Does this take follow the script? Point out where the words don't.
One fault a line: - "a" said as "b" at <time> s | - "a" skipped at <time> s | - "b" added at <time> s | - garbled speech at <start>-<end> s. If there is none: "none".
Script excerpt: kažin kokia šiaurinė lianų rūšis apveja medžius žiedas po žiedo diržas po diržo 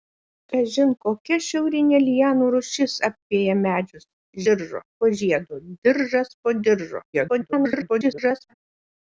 - "žiedas" said as "diržo" at 4.5 s
- garbled speech at 7.1-8.5 s